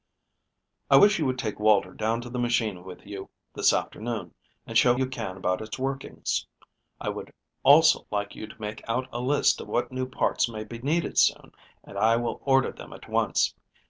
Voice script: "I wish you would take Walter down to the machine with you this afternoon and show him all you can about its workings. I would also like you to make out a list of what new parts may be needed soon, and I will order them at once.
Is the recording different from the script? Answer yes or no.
yes